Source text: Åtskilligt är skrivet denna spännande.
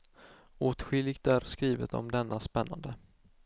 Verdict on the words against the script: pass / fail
fail